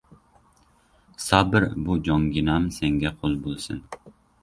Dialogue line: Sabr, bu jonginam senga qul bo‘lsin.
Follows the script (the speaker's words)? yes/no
yes